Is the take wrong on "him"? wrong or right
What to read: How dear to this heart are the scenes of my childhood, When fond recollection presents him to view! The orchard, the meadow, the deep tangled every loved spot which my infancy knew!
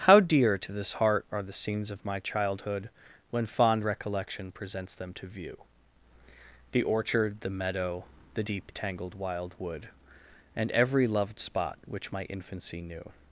wrong